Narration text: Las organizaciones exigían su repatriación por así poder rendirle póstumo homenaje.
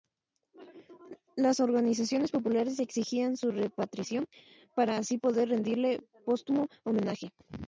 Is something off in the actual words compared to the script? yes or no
yes